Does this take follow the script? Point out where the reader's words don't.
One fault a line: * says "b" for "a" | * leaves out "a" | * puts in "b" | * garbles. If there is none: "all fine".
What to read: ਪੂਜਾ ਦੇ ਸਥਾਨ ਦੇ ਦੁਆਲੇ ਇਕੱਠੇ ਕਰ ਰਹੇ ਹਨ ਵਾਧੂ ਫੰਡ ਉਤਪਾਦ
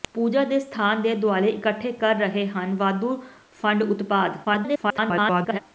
* garbles